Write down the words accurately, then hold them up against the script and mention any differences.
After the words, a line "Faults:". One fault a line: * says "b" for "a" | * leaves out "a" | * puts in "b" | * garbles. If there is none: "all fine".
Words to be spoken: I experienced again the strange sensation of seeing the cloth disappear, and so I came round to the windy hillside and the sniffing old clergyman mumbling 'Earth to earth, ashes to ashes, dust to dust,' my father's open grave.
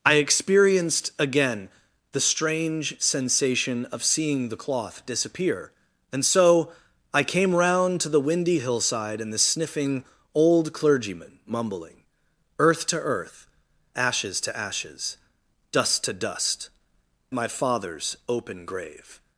I experienced again the strange sensation of seeing the cloth disappear, and so I came round to the windy hillside and the sniffing old clergyman mumbling 'Earth to earth, ashes to ashes, dust to dust,' my father's open grave.
Faults:
all fine